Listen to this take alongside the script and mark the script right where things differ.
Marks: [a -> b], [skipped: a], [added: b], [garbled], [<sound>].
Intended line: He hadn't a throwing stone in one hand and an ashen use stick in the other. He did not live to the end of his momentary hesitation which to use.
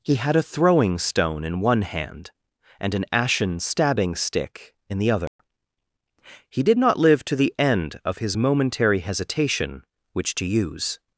He [hadn't -> had] a throwing stone in one hand and an ashen [use -> stabbing] stick in the other. [dropout] He did not live to the end of his momentary hesitation which to use.